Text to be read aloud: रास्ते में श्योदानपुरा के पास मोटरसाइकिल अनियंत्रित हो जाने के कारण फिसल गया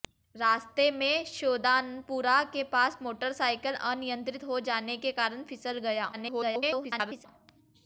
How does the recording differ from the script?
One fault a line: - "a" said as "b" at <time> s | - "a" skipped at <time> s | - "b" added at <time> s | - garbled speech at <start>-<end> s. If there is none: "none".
- garbled speech at 6.1-7.3 s